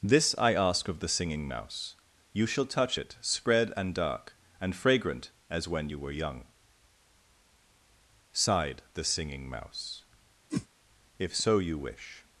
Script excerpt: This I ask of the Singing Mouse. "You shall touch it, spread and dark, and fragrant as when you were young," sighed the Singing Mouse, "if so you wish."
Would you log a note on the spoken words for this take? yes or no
no